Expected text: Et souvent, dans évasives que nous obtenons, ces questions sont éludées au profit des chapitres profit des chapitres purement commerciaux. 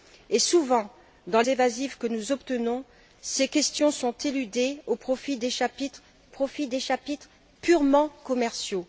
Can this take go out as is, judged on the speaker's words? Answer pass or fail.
pass